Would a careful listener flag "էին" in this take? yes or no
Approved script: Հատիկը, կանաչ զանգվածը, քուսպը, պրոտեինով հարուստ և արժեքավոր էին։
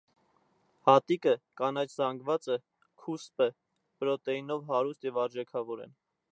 yes